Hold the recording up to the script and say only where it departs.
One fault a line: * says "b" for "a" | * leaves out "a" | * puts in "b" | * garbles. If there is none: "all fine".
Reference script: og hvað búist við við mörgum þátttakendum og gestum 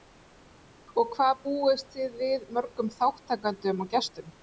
* says "þið" for "við"